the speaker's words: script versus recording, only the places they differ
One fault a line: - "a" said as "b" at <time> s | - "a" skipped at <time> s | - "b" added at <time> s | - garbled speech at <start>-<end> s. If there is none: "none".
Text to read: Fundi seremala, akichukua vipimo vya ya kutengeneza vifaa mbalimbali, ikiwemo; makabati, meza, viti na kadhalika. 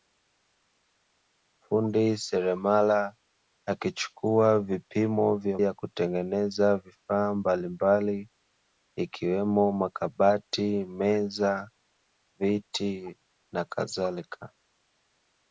none